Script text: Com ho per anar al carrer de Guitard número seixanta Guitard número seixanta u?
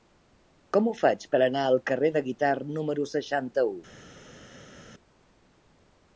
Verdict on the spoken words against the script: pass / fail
fail